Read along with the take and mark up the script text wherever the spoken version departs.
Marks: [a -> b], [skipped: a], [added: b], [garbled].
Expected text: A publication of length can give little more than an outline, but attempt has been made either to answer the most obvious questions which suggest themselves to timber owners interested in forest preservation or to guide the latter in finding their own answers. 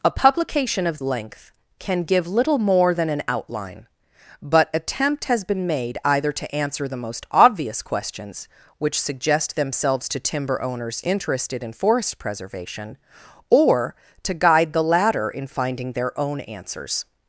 A publication of length can give little more than an outline, but attempt has been made either to answer the most obvious questions which suggest themselves to timber owners interested in forest preservation or to guide the latter in finding their own answers.